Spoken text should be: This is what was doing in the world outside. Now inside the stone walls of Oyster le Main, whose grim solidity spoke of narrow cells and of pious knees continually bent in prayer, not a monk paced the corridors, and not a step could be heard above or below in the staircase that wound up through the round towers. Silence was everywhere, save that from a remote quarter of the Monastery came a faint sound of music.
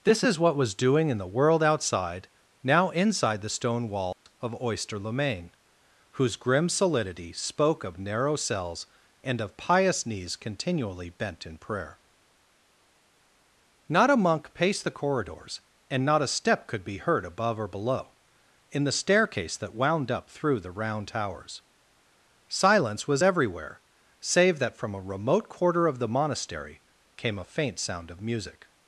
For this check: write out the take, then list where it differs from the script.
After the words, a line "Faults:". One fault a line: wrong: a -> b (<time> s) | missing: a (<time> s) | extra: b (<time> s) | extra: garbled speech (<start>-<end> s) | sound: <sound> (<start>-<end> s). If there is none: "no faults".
This is what was doing in the world outside. Now inside the stone walls of Oyster le Main, whose grim solidity spoke of narrow cells and of pious knees continually bent in prayer, not a monk paced the corridors, and not a step could be heard above or below in the staircase that wound up through the round towers. Silence was everywhere, save that from a remote quarter of the Monastery came a faint sound of music.
Faults:
sound: dropout (4.1-4.3 s)